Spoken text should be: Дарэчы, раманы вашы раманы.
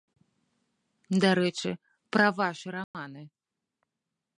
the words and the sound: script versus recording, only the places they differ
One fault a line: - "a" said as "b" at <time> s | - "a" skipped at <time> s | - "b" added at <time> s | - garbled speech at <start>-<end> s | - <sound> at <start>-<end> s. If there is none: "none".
- "раманы" said as "пра" at 2.1 s
- dropout at 2.8-2.9 s